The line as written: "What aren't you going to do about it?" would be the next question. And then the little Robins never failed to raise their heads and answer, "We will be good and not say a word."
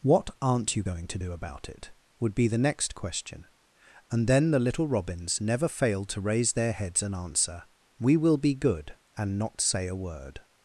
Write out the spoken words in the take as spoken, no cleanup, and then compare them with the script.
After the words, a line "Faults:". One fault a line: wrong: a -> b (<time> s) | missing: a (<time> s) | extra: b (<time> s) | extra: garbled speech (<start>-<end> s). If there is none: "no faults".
"What aren't you going to do about it?" would be the next question. And then the little Robins never failed to raise their heads and answer, "We will be good and not say a word."
Faults:
no faults